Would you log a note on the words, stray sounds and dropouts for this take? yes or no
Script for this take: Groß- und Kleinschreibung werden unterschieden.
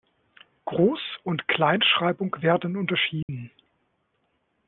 yes